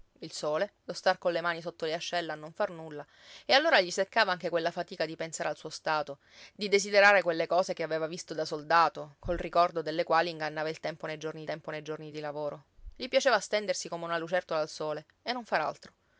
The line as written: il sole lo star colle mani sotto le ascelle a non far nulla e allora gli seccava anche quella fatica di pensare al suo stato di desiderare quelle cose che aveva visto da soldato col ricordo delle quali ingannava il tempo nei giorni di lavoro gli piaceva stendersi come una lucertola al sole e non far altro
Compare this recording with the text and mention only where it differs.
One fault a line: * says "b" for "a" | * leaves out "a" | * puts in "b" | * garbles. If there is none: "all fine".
* puts in "tempo nei giorni"